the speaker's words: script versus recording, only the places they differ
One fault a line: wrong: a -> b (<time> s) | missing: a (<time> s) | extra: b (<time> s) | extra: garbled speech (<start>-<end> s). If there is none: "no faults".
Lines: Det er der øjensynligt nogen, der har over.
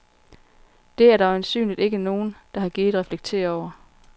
extra: ikke (1.8 s)
extra: gidet reflektere (2.7 s)